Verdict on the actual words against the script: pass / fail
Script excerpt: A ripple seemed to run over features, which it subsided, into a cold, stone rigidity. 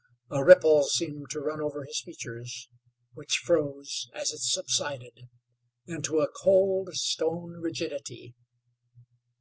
fail